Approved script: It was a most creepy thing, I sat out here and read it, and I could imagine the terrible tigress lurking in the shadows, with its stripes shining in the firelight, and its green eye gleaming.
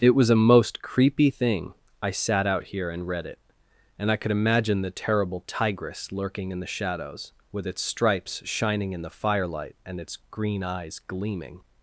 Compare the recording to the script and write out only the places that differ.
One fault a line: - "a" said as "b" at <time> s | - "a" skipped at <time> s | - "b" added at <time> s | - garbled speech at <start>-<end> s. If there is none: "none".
- "eye" said as "eyes" at 10.6 s